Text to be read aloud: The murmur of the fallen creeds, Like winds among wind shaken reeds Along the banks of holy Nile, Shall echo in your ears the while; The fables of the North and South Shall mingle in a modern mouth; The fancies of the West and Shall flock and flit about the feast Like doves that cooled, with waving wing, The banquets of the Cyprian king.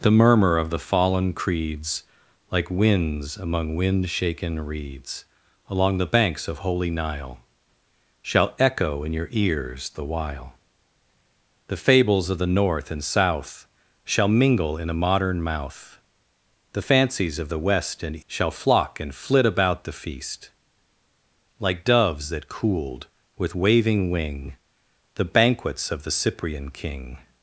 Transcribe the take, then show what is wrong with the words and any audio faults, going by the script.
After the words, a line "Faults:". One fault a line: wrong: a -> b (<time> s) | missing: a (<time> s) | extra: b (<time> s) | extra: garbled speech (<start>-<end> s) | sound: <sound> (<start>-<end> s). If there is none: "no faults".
The murmur of the fallen creeds, Like winds among wind shaken reeds Along the banks of holy Nile, Shall echo in your ears the while; The fables of the North and South Shall mingle in a modern mouth; The fancies of the West and Shall flock and flit about the feast Like doves that cooled, with waving wing, The banquets of the Cyprian king.
Faults:
no faults